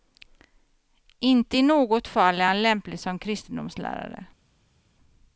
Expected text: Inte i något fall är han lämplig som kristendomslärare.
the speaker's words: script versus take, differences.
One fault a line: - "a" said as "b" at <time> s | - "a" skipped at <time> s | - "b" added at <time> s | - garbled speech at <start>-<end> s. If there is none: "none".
none